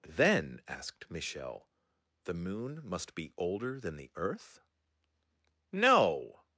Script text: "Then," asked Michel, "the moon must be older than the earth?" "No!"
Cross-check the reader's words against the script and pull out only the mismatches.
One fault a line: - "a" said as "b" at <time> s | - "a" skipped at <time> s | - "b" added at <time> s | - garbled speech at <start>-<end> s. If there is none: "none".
none